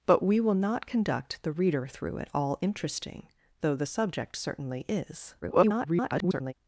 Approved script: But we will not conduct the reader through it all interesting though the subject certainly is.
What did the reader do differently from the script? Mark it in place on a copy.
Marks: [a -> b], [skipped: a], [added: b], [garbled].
But we will not conduct the reader through it all interesting though the subject certainly is. [garbled]